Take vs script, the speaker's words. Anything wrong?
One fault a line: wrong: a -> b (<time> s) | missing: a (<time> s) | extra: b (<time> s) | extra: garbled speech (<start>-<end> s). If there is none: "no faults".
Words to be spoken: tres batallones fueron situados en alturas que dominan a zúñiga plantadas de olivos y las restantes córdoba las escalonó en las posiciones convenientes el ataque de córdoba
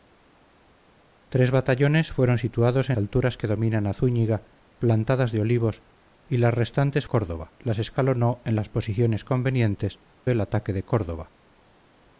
no faults